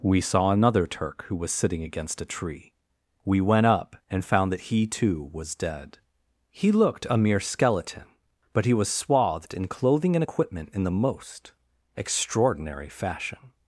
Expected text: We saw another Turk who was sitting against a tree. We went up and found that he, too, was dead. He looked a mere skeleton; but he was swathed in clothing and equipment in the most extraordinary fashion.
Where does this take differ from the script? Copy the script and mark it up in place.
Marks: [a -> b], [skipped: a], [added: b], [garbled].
We saw another Turk who was sitting against a tree. We went up and found that he, too, was dead. He looked a mere skeleton; but he was swathed in clothing and equipment in the most extraordinary fashion.